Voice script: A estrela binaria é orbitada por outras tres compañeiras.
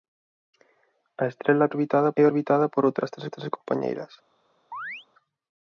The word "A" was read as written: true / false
true